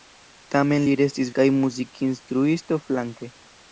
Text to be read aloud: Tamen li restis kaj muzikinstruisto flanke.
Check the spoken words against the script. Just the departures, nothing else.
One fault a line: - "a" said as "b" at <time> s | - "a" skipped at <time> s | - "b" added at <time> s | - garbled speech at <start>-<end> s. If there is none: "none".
none